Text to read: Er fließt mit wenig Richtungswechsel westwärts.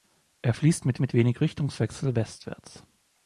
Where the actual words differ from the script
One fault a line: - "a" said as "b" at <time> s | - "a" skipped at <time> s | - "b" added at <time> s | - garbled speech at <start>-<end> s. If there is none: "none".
- "mit" added at 1.0 s